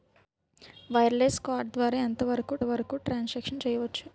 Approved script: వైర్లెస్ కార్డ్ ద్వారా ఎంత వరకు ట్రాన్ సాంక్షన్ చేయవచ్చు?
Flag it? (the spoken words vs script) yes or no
yes